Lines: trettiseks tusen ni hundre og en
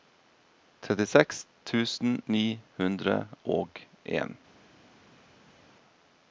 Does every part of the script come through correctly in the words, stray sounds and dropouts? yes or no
yes